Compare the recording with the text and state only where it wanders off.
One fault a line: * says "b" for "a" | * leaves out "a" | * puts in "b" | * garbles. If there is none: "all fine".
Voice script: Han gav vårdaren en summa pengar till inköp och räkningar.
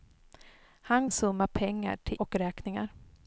* leaves out "gav vårdaren"
* leaves out "inköp"